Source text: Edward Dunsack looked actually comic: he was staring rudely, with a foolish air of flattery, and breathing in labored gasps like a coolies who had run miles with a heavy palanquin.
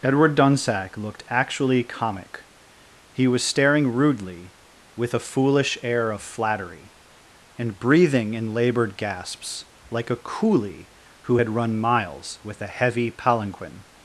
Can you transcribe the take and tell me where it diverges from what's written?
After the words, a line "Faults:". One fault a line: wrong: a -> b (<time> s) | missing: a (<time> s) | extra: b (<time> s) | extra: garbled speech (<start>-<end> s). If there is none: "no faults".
Edward Dunsack looked actually comic: he was staring rudely, with a foolish air of flattery, and breathing in labored gasps like a coolie who had run miles with a heavy palanquin.
Faults:
wrong: coolies -> coolie (10.2 s)